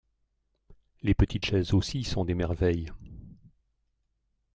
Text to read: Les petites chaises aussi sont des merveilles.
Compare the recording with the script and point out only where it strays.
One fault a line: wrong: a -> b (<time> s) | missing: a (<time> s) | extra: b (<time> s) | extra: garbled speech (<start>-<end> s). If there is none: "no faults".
no faults